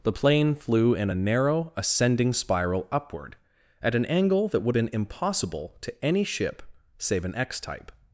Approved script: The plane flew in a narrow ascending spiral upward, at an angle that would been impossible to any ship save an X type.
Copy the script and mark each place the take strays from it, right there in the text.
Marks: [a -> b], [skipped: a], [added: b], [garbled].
The plane flew in a narrow ascending spiral upward, at an angle that would been impossible to any ship save an X type.